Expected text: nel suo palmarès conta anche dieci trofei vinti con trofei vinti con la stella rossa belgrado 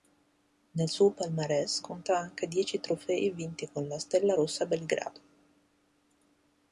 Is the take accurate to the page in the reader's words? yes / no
no